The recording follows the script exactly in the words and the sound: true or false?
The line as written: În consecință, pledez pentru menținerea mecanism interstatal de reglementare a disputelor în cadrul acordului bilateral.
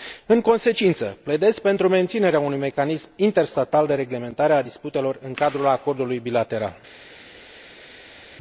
false